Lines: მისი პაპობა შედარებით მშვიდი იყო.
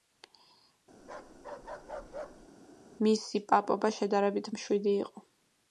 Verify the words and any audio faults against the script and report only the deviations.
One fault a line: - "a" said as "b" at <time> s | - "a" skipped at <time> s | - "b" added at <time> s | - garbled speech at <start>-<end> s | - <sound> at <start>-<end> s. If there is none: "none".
- bark at 1.0-2.5 s